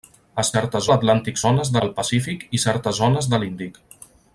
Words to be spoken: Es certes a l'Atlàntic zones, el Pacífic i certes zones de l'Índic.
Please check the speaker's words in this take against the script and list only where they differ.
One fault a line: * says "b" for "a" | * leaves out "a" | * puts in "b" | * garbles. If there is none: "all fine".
all fine